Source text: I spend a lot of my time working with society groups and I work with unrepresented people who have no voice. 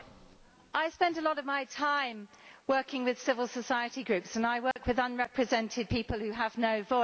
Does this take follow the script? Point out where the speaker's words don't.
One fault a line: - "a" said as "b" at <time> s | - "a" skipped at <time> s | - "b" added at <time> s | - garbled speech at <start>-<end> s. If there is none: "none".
- "civil" added at 3.2 s